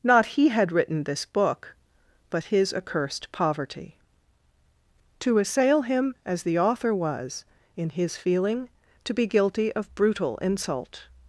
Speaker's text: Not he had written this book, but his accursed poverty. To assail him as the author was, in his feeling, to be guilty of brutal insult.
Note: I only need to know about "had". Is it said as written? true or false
true